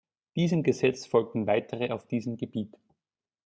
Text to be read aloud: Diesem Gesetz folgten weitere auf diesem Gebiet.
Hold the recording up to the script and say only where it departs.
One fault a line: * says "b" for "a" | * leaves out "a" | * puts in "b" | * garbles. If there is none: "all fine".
all fine